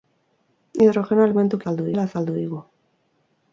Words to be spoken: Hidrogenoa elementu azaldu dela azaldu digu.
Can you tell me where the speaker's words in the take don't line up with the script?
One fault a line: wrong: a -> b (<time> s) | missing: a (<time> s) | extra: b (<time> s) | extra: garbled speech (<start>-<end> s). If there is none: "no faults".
no faults